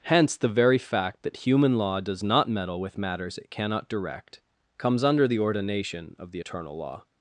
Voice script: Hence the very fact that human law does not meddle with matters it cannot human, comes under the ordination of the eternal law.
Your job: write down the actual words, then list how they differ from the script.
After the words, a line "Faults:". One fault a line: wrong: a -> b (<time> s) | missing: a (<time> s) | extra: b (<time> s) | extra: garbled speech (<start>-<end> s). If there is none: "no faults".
Hence the very fact that human law does not meddle with matters it cannot direct, comes under the ordination of the eternal law.
Faults:
wrong: human -> direct (3.9 s)